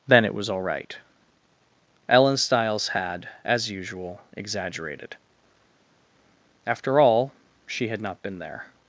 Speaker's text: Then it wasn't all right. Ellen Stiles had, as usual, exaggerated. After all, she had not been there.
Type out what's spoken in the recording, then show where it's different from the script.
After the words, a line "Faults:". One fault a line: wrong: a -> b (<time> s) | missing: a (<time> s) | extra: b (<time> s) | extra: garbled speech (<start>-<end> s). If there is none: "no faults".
Then it was all right. Ellen Stiles had, as usual, exaggerated. After all, she had not been there.
Faults:
wrong: wasn't -> was (0.3 s)